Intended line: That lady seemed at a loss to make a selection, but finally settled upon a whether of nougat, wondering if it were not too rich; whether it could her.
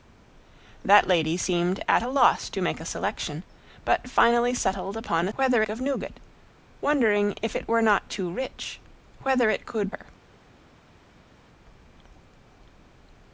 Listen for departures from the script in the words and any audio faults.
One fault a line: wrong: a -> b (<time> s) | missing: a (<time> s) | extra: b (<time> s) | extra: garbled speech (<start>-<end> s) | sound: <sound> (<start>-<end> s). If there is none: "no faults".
no faults